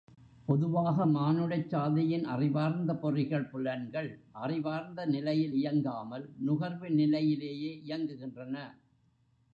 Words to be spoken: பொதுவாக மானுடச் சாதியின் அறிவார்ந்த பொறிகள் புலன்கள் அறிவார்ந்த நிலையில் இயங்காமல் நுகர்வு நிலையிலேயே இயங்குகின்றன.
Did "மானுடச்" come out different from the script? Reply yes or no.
no